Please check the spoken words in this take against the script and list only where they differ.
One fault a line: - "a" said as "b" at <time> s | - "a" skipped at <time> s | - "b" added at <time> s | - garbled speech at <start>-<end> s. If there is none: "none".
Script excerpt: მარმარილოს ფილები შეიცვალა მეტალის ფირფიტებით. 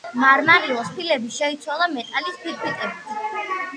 none